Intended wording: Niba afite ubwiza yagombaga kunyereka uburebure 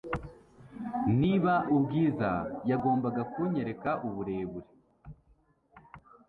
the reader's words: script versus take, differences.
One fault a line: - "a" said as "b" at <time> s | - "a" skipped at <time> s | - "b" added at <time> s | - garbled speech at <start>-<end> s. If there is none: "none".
- "afite" skipped at 1.5 s